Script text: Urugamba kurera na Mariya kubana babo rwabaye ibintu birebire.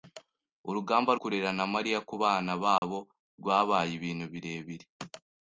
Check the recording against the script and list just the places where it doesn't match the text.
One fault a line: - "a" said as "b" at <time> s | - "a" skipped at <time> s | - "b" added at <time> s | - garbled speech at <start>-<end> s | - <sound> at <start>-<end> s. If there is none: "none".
- dropout at 2.8-2.8 s